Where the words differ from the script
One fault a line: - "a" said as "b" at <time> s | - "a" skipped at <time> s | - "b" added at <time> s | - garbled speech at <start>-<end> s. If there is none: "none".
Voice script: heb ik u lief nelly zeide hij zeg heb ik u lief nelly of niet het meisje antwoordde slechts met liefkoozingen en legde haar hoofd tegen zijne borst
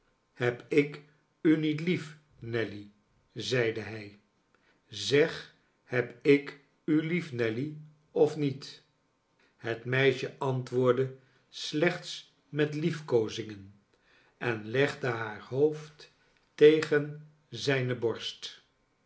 - "niet" added at 1.6 s